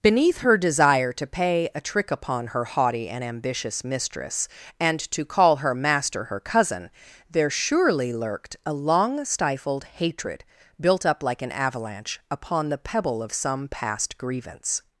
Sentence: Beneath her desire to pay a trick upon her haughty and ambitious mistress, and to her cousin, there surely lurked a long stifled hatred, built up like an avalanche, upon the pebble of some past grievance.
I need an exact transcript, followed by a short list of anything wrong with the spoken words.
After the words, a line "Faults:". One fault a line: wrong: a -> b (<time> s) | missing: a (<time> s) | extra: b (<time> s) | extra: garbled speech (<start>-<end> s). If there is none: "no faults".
Beneath her desire to pay a trick upon her haughty and ambitious mistress, and to call her master her cousin, there surely lurked a long stifled hatred, built up like an avalanche, upon the pebble of some past grievance.
Faults:
extra: call her master (5.2 s)